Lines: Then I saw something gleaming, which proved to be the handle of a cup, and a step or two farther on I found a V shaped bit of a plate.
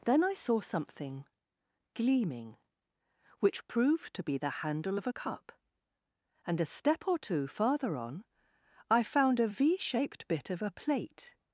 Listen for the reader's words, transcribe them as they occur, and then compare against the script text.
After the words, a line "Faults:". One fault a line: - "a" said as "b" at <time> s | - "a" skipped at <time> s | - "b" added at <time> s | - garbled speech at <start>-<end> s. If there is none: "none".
Then I saw something gleaming, which proved to be the handle of a cup, and a step or two farther on I found a V shaped bit of a plate.
Faults:
none